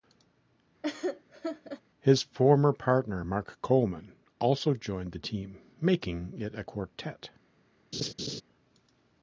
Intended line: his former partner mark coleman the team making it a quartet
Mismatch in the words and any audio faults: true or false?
true